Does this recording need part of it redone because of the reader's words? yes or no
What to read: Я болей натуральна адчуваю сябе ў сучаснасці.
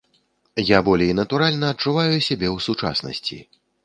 no